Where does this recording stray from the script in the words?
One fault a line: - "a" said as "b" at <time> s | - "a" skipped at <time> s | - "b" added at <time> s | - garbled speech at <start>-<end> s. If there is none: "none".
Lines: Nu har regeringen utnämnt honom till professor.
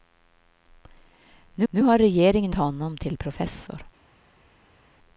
- "nu" added at 1.7 s
- "utnämnt" skipped at 2.5 s